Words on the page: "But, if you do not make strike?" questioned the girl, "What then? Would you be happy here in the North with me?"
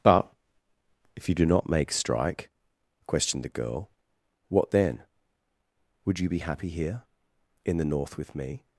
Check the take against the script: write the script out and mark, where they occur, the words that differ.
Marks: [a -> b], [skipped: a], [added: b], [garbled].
"But, if you do not make strike?" questioned the girl, "What then? Would you be happy here in the North with me?"